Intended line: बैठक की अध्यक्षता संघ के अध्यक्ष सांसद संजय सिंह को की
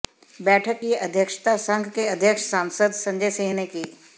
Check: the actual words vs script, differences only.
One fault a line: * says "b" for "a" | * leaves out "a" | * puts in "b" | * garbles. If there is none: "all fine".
* says "ने" for "को"